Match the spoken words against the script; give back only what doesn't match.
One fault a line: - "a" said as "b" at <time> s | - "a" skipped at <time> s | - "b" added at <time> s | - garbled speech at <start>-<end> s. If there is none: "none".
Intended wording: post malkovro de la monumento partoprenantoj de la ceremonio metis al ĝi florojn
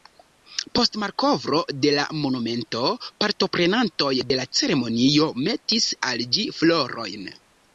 none